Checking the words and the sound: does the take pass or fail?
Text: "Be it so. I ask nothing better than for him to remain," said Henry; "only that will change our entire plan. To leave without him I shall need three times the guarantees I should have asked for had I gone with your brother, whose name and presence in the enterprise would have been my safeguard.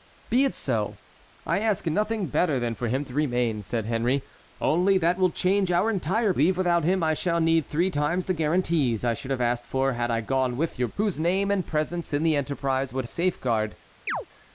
fail